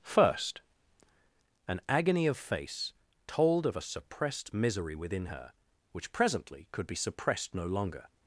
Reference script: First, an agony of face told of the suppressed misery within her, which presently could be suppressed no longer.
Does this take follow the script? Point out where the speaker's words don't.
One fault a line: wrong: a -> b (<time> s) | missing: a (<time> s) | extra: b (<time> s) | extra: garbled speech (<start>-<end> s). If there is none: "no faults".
wrong: the -> a (3.8 s)